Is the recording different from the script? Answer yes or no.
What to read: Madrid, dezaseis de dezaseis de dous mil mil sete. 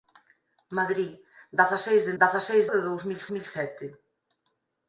no